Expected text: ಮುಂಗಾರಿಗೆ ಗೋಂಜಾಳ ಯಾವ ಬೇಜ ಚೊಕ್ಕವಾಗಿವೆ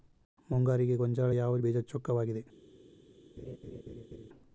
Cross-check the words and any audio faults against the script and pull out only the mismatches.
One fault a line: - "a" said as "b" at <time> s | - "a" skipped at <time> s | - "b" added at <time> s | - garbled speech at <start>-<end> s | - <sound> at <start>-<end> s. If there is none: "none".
- laugh at 3.4-4.3 s